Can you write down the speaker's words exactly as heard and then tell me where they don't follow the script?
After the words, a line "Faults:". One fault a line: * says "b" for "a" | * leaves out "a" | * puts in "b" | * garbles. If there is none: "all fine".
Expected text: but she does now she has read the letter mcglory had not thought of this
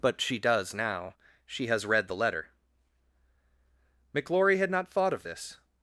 but she does now she has read the letter mcglory had not thought of this
Faults:
all fine